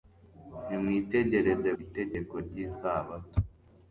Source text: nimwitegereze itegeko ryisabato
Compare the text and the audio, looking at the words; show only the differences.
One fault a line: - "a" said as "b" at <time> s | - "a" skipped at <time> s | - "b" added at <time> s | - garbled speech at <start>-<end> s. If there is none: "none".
none